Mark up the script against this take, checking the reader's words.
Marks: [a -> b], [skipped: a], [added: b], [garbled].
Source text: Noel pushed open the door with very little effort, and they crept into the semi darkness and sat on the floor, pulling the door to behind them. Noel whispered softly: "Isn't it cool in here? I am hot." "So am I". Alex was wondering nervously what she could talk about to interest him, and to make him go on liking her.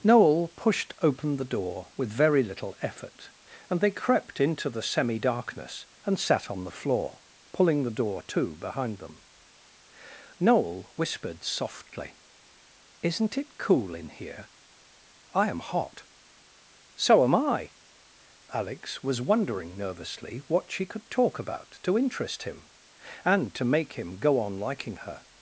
Noel pushed open the door with very little effort, and they crept into the semi darkness and sat on the floor, pulling the door to behind them. Noel whispered softly: "Isn't it cool in here? I am hot." "So am I". Alex was wondering nervously what she could talk about to interest him, and to make him go on liking her.